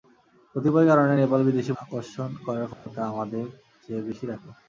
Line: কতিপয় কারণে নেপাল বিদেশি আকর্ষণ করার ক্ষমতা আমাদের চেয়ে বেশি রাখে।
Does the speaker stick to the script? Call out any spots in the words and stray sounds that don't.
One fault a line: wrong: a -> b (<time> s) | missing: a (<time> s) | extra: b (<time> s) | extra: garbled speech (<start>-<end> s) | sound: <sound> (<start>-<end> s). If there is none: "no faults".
sound: dropout (2.7-2.9 s)